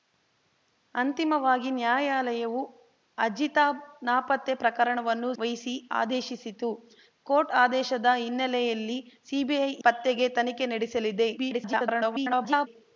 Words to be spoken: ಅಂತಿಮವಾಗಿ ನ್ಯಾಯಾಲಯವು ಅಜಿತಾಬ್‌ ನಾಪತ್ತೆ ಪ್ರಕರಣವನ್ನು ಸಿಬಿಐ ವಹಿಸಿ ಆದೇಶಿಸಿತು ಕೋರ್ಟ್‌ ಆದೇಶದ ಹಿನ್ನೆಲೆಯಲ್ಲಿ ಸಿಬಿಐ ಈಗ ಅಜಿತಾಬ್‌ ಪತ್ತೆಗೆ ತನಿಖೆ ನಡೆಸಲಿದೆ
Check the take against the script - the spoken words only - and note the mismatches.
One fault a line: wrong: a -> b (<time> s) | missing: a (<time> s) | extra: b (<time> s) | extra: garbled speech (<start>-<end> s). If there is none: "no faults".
missing: ಸಿಬಿಐ (5.3 s)
missing: ಈಗ ಅಜಿತಾಬ್ (9.7 s)
extra: garbled speech (11.4-12.7 s)